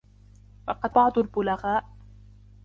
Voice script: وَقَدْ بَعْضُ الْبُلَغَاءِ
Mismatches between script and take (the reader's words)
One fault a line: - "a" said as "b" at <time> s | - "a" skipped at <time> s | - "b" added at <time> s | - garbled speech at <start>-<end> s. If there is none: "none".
none